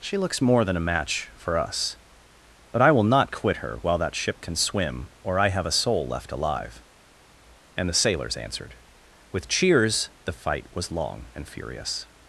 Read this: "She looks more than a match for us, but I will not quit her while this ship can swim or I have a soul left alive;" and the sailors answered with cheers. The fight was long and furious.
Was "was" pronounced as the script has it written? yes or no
yes